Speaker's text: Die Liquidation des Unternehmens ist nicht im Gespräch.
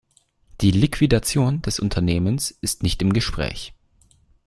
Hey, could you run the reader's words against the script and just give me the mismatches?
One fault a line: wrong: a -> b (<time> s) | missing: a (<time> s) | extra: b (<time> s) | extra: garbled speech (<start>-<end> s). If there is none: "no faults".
no faults